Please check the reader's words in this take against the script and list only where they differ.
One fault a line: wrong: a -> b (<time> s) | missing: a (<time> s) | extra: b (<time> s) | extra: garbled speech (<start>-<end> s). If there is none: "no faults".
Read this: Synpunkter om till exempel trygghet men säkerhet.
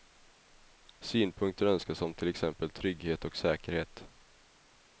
extra: önskas (1.6 s)
wrong: men -> och (3.2 s)